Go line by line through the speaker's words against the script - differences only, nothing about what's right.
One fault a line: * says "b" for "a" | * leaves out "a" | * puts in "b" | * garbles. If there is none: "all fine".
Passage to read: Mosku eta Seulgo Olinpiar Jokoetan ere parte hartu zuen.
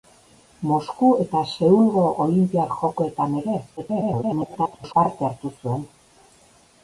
* garbles